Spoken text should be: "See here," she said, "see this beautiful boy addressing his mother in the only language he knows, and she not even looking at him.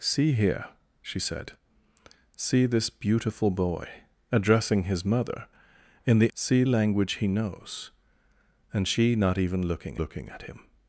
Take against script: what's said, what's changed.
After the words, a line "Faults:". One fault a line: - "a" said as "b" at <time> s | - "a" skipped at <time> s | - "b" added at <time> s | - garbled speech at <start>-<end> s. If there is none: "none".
"See here," she said, "see this beautiful boy addressing his mother in the see language he knows, and she not even looking looking at him.
Faults:
- "only" said as "see" at 6.3 s
- "looking" added at 10.0 s